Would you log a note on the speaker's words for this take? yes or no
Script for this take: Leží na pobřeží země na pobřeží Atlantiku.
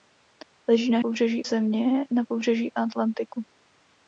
no